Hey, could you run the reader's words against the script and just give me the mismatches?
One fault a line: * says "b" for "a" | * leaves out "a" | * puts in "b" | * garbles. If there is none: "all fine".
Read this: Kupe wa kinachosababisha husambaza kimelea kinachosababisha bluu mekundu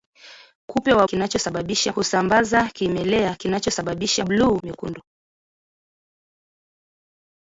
all fine